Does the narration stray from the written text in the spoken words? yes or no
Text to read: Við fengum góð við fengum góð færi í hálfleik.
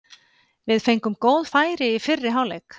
yes